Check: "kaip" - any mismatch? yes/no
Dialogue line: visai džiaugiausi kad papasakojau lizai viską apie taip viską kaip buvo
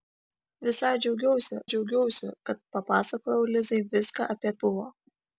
yes